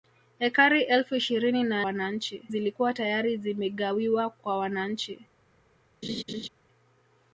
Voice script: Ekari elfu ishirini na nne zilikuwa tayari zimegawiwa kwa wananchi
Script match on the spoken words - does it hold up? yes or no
no